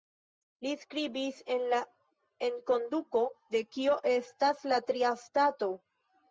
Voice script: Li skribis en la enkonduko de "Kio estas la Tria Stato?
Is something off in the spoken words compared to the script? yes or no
no